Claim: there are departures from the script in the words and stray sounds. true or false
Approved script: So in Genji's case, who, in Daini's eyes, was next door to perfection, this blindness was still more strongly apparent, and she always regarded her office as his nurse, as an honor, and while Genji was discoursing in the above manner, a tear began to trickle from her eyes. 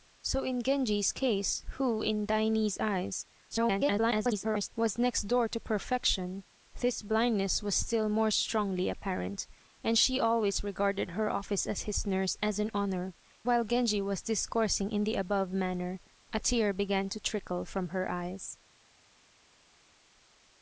true